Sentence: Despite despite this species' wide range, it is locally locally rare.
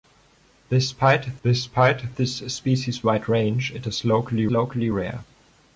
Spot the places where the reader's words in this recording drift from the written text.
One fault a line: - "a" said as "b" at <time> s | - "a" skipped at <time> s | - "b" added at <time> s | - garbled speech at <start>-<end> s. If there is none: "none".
none